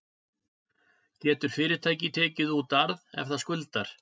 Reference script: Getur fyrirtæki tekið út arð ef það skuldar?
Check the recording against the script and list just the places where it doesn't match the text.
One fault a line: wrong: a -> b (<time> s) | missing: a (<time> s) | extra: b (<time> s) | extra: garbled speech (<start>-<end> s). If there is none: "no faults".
no faults